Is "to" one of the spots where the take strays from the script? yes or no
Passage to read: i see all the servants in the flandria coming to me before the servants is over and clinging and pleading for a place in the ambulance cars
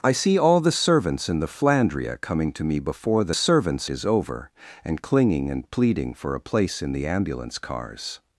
no